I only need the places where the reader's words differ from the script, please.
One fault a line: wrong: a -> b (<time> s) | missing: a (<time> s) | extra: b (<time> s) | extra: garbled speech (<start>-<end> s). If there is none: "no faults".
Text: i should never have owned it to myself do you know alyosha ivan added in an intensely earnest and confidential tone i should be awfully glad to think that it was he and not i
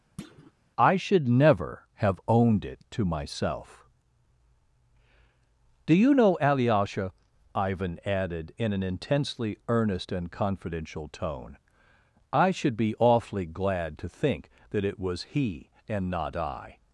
no faults